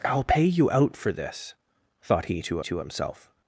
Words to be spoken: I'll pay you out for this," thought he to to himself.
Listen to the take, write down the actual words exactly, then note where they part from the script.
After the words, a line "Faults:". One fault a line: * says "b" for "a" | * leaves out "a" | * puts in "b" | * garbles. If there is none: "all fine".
I'll pay you out for this," thought he to to himself.
Faults:
all fine